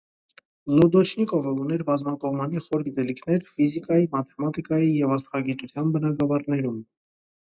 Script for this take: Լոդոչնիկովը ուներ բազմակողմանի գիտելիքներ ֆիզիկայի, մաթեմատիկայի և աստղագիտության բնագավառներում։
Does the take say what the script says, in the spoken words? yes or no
no